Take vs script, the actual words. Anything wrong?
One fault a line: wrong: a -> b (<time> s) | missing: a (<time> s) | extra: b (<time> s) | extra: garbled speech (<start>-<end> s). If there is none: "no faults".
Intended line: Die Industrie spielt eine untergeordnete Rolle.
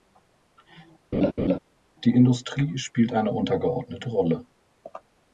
no faults